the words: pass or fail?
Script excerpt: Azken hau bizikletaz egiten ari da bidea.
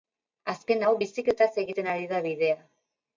pass